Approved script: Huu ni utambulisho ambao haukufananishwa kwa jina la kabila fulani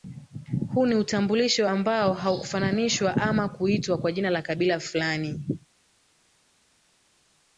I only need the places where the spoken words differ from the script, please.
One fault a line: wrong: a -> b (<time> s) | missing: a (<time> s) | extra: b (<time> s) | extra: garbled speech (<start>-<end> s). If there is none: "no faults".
extra: ama kuitwa (3.2 s)